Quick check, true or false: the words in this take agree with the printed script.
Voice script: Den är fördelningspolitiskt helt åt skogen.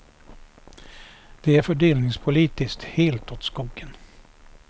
false